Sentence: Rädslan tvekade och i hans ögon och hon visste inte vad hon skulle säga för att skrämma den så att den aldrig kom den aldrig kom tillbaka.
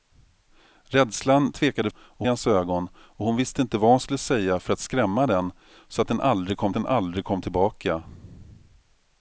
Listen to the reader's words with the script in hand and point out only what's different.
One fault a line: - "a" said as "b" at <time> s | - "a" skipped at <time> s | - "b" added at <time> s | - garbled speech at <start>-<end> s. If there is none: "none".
none